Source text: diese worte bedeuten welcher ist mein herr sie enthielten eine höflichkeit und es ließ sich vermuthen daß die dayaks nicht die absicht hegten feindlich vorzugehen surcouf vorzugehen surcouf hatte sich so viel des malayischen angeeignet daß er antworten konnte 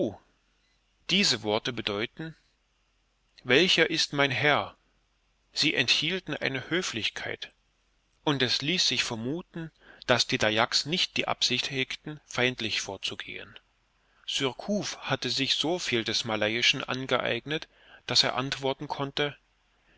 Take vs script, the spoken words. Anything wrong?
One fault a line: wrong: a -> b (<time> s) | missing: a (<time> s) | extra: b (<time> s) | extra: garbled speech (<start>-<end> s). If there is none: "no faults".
missing: vorzugehen surcouf (15.0 s)